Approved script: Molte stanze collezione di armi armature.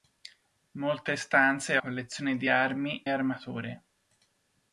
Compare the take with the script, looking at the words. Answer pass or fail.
pass